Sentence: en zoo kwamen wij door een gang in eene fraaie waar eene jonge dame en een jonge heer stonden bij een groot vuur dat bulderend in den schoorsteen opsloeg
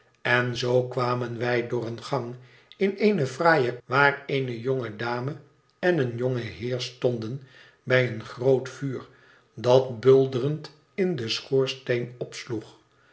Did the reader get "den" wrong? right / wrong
right